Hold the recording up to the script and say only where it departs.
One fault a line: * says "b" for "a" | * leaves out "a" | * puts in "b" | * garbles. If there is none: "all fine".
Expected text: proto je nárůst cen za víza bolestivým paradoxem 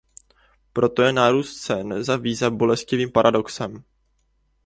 all fine